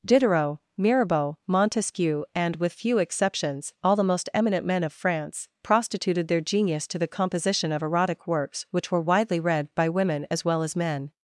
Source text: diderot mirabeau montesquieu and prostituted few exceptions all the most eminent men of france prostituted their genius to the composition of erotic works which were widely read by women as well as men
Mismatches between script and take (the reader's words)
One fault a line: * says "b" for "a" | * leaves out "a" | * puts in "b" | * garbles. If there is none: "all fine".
* says "with" for "prostituted"